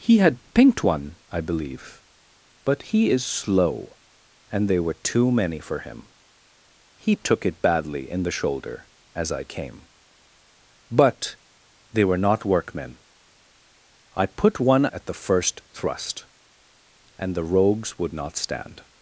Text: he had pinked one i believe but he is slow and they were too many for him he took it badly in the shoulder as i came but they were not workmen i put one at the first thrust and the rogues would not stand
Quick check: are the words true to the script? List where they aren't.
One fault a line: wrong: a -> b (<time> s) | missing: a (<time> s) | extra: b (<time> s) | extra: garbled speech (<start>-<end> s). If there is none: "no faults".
no faults